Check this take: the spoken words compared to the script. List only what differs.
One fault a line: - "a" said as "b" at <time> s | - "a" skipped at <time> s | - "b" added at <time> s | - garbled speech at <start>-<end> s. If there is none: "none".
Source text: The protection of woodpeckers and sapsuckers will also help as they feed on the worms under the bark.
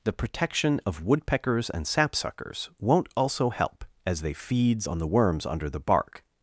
- "will" said as "won't" at 2.8 s
- "feed" said as "feeds" at 4.3 s